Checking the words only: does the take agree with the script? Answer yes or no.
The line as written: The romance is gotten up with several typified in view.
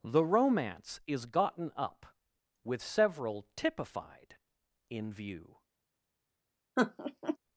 yes